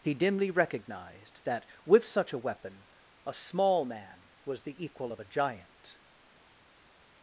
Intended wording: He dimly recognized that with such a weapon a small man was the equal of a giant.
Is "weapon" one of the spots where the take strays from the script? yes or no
no